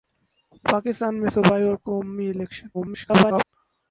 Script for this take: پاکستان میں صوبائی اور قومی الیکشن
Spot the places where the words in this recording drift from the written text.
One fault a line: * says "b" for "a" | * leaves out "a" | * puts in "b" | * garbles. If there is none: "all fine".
* garbles